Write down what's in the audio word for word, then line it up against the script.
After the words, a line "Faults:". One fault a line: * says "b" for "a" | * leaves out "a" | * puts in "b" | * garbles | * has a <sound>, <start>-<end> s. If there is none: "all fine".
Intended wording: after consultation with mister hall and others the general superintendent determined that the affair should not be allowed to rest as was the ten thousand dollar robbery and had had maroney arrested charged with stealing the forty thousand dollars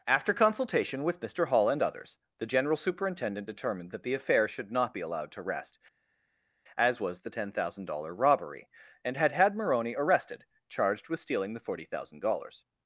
after consultation with mister hall and others the general superintendent determined that the affair should not be allowed to rest as was the ten thousand dollar robbery and had had maroney arrested charged with stealing the forty thousand dollars
Faults:
all fine